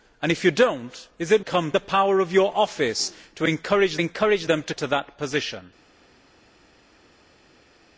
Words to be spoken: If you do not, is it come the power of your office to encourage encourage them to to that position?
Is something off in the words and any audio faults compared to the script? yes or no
no